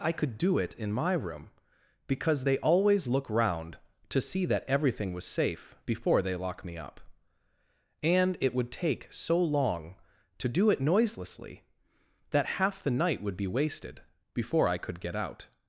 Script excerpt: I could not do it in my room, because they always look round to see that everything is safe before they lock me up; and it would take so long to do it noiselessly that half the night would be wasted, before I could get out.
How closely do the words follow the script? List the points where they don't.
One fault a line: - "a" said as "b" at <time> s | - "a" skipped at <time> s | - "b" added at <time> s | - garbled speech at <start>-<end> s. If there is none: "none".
- "not" skipped at 0.4 s
- "is" said as "was" at 5.1 s